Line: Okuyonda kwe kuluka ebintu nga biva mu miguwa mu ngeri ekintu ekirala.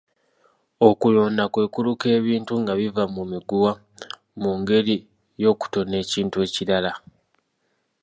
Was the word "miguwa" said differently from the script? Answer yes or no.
no